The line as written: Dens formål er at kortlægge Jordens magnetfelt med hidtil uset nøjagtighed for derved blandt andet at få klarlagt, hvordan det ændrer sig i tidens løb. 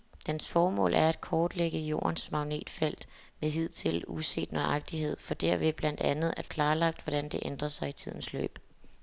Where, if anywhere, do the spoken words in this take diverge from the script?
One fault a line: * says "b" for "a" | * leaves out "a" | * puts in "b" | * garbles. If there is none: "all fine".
* leaves out "få"